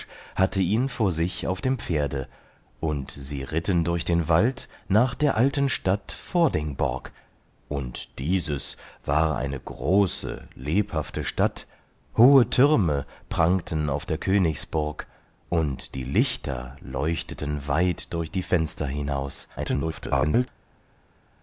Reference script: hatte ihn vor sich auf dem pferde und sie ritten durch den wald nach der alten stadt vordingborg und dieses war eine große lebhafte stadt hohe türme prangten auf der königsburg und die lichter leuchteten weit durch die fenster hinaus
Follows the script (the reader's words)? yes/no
no